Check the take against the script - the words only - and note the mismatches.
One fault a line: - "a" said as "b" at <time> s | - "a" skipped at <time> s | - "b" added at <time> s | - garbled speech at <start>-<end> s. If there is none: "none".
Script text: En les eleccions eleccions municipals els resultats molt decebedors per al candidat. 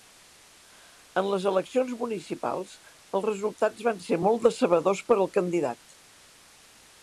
- "eleccions" skipped at 1.9 s
- "van ser" added at 3.9 s